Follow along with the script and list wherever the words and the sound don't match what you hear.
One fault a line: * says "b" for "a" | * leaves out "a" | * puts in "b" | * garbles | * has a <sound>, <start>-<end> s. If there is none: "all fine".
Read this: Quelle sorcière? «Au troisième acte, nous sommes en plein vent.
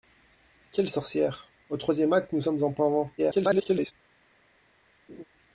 * garbles
* has a laugh, 5.1-5.2 s